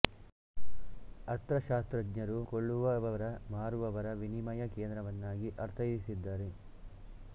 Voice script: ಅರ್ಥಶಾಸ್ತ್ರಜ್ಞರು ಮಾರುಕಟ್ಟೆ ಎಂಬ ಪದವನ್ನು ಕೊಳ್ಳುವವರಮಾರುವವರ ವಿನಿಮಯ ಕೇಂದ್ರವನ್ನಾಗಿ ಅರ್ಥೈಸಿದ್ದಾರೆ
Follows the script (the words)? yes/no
no